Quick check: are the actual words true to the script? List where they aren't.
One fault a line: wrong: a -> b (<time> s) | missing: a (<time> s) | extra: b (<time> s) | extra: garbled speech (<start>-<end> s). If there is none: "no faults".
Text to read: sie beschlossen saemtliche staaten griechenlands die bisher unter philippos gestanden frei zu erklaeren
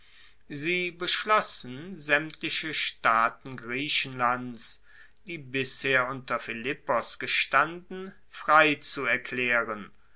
no faults